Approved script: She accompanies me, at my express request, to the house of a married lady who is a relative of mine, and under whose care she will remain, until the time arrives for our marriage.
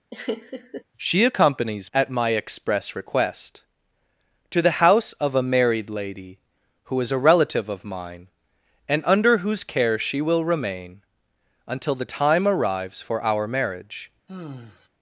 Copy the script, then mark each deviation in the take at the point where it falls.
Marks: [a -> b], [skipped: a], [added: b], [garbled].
She accompanies [skipped: me,] at my express request, to the house of a married lady who is a relative of mine, and under whose care she will remain, until the time arrives for our marriage.